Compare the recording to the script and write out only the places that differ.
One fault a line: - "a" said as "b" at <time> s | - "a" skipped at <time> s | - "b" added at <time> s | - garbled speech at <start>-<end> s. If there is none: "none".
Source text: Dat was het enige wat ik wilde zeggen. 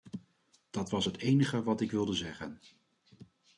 none